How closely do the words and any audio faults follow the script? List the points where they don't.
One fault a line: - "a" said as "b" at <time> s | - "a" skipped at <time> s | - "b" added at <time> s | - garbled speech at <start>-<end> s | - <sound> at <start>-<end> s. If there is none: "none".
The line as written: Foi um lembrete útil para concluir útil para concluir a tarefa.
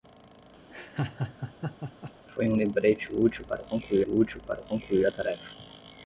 - laugh at 0.7-2.1 s